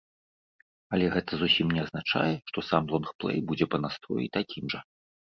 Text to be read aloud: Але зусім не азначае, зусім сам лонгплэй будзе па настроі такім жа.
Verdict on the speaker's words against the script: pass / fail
fail